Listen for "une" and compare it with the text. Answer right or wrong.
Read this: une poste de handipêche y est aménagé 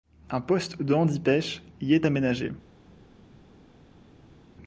wrong